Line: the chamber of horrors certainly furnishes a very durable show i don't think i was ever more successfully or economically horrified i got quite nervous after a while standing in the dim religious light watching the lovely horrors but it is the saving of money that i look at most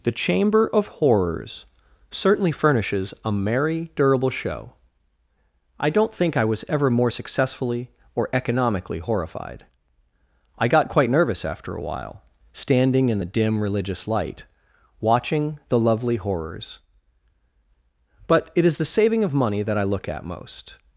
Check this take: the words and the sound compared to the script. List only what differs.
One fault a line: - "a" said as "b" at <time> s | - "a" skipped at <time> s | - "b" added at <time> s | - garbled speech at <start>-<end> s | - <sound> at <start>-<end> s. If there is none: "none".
- "very" said as "merry" at 3.3 s